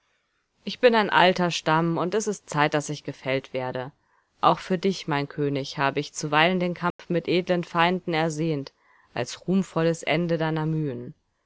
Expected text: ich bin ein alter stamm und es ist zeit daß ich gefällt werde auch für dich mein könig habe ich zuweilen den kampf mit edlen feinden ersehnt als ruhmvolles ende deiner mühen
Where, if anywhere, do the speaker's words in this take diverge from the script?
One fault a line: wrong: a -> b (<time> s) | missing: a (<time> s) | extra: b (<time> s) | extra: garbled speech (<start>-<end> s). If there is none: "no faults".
no faults